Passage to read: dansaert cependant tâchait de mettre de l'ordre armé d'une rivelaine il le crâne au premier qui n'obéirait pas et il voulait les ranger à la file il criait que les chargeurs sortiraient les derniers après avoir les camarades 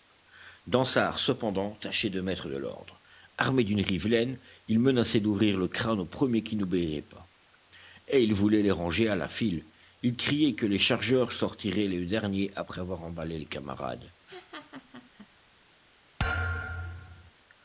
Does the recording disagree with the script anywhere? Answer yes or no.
yes